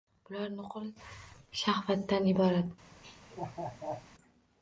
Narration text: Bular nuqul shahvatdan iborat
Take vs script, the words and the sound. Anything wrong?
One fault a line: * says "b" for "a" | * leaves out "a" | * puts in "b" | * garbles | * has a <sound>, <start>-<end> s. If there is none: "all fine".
* has a laugh, 3.0-4.1 s